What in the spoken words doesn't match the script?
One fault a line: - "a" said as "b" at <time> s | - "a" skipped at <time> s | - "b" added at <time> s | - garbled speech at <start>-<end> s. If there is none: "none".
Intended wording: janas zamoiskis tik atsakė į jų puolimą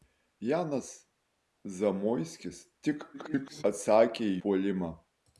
- garbled speech at 3.1-3.6 s
- "jų" skipped at 4.4 s